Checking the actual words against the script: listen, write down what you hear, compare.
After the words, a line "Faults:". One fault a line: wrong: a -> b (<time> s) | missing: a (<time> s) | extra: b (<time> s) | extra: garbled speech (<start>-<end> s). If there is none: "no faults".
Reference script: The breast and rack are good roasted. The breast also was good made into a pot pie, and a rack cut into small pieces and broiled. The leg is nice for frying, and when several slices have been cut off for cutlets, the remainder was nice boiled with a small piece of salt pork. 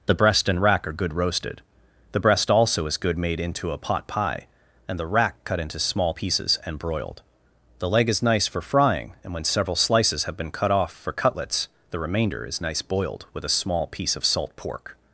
The breast and rack are good roasted. The breast also is good made into a pot pie, and the rack cut into small pieces and broiled. The leg is nice for frying, and when several slices have been cut off for cutlets, the remainder is nice boiled with a small piece of salt pork.
Faults:
wrong: was -> is (2.9 s)
wrong: a -> the (5.0 s)
wrong: was -> is (12.4 s)